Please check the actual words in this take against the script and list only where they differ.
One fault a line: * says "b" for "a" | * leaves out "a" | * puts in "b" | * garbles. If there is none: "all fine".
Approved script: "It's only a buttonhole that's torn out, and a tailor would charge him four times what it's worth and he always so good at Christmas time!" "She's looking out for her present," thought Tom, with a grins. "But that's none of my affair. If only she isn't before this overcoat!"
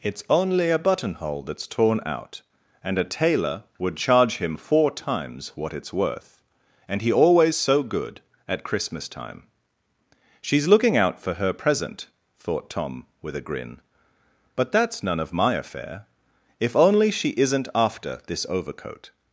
* says "grin" for "grins"
* says "after" for "before"